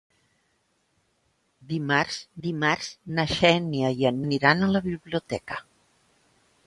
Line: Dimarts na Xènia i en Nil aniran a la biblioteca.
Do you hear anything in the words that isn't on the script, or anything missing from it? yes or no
yes